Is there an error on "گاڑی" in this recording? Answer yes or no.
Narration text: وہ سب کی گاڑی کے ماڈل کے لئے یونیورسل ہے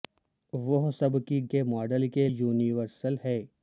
yes